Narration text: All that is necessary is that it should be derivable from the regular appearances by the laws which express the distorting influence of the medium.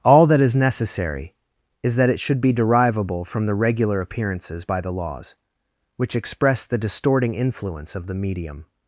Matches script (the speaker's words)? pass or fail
pass